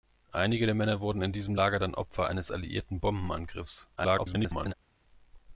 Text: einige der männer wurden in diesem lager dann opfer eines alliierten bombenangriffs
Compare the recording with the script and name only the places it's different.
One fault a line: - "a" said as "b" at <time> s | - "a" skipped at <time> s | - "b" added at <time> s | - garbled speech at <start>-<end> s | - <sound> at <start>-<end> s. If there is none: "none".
- garbled speech at 4.0-4.7 s